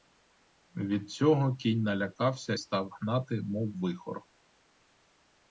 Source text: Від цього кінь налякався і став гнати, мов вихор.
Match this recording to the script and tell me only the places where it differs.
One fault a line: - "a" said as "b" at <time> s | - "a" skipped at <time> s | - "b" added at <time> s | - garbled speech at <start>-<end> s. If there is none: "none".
- "і" skipped at 2.5 s